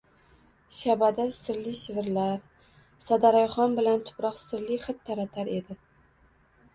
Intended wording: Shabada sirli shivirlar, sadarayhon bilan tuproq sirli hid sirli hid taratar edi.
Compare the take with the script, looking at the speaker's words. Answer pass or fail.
fail